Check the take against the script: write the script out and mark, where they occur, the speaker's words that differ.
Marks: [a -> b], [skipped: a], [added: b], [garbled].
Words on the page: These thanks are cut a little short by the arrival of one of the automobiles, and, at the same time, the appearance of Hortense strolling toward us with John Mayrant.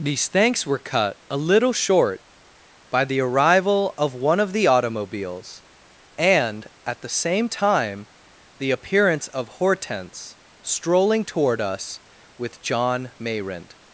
These thanks [are -> were] cut a little short by the arrival of one of the automobiles, and, at the same time, the appearance of Hortense strolling toward us with John Mayrant.